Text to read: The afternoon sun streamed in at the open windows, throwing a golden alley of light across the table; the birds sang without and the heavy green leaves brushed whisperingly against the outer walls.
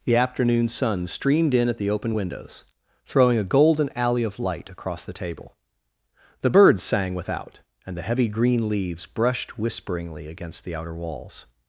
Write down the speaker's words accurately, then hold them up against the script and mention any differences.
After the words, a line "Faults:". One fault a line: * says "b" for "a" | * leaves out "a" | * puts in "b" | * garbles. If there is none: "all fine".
The afternoon sun streamed in at the open windows, throwing a golden alley of light across the table; the birds sang without and the heavy green leaves brushed whisperingly against the outer walls.
Faults:
all fine